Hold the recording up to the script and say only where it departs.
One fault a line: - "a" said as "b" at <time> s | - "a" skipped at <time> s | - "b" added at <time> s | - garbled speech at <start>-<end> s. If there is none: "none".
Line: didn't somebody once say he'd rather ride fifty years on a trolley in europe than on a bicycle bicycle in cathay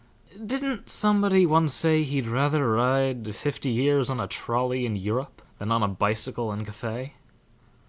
- "bicycle" skipped at 6.5 s